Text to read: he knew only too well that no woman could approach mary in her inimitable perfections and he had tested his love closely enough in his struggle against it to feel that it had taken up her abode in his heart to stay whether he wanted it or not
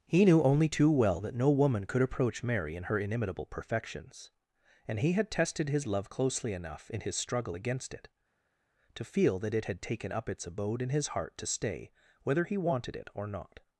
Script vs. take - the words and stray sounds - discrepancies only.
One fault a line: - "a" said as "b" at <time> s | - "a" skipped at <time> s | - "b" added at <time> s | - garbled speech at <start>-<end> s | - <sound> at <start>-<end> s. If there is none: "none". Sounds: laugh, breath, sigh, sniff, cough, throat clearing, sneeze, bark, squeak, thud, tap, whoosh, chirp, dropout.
- "her" said as "its" at 10.3 s